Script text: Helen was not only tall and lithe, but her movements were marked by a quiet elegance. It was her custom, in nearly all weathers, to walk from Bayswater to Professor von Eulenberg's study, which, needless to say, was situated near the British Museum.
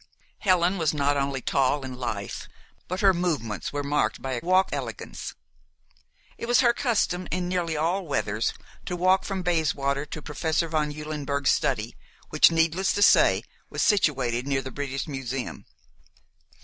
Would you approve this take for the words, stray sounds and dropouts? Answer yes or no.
no